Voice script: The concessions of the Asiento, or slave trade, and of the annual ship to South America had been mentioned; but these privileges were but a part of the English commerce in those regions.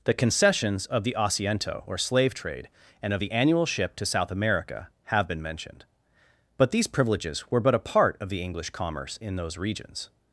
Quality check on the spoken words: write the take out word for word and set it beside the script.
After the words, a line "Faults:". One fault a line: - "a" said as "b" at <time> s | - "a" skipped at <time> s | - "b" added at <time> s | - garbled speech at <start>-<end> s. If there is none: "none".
The concessions of the Asiento, or slave trade, and of the annual ship to South America have been mentioned; but these privileges were but a part of the English commerce in those regions.
Faults:
- "had" said as "have" at 5.0 s